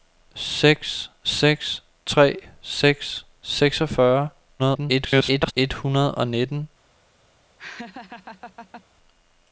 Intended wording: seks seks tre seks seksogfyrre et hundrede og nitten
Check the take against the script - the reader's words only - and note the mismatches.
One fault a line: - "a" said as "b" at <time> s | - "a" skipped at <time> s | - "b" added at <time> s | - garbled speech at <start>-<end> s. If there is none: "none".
- garbled speech at 4.6-5.5 s